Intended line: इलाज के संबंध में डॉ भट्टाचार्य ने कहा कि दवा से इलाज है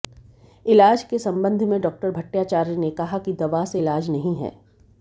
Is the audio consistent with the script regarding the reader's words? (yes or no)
no